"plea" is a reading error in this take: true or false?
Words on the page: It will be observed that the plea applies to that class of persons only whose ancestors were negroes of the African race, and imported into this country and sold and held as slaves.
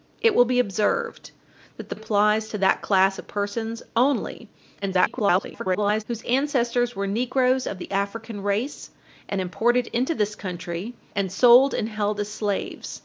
true